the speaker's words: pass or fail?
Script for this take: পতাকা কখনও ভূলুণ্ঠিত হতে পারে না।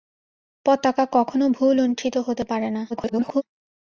fail